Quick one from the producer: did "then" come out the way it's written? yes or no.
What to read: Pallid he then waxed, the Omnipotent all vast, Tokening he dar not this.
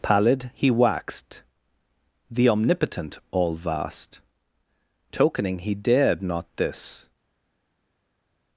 no